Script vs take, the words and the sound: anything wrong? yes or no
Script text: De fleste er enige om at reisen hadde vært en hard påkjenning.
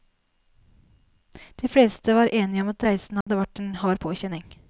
yes